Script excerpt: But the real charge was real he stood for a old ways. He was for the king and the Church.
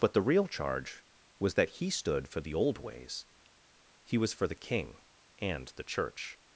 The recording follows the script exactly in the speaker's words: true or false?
false